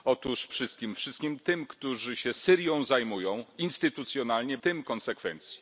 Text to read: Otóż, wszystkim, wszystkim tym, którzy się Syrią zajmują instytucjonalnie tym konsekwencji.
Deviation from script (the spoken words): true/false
false